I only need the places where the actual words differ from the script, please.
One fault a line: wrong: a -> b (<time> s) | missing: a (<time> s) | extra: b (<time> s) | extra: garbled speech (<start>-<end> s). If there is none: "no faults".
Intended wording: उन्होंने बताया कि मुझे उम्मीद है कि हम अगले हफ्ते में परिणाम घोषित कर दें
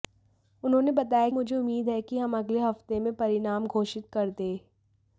missing: कि (1.3 s)